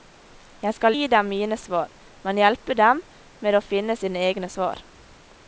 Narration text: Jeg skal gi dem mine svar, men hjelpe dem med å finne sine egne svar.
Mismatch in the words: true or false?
false